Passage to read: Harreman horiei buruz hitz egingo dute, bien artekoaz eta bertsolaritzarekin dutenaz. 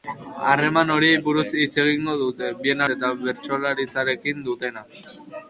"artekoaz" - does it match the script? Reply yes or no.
no